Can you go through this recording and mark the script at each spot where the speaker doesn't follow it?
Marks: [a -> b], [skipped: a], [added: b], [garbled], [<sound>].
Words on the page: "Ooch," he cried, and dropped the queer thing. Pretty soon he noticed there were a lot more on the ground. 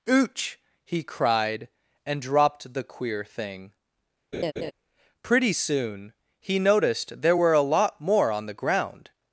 "Ooch," he cried, and dropped the queer thing. [laugh] Pretty soon he noticed there were a lot more on the ground.